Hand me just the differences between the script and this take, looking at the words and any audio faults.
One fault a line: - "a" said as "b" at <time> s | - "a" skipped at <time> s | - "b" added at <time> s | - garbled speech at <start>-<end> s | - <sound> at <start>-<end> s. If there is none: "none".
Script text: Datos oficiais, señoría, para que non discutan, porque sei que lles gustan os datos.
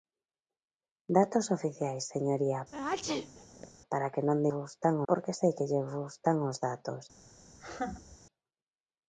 - sneeze at 2.7-3.7 s
- "discutan" said as "gustan" at 4.6 s
- laugh at 7.5-8.2 s